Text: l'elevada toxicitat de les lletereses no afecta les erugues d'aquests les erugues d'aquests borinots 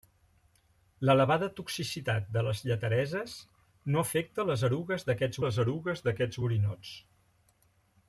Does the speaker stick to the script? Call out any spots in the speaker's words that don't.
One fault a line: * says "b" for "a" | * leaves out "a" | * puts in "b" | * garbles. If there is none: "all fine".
all fine